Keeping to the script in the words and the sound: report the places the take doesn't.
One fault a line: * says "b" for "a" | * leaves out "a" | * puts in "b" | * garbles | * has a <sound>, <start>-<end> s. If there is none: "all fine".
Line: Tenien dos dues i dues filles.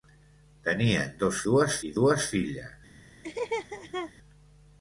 * has a laugh, 3.2-4.1 s